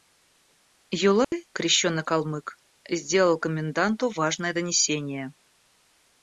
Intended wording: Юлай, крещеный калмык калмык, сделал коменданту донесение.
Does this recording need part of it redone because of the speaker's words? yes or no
yes